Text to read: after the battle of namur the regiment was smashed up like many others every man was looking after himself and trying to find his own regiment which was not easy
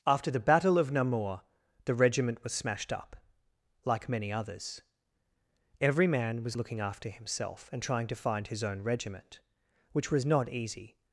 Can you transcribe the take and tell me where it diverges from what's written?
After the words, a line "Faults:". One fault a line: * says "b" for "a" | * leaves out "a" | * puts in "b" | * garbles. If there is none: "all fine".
after the battle of namur the regiment was smashed up like many others every man was looking after himself and trying to find his own regiment which was not easy
Faults:
all fine